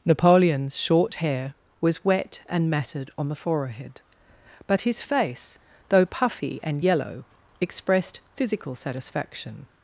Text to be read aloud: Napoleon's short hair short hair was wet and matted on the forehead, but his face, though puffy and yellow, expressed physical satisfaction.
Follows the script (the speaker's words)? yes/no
no